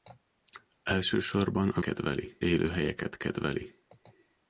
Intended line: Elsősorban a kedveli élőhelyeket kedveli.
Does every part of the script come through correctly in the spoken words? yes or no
yes